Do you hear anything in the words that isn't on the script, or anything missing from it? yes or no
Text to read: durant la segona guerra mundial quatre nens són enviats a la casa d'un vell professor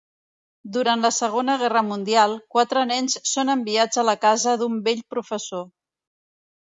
no